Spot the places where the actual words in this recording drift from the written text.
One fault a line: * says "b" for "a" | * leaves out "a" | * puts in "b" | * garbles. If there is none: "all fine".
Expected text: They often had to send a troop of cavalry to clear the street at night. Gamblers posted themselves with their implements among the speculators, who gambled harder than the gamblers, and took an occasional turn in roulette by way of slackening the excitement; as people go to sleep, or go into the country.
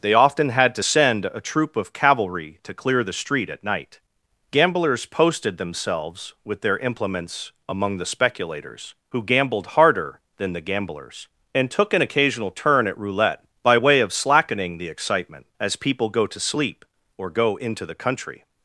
* says "at" for "in"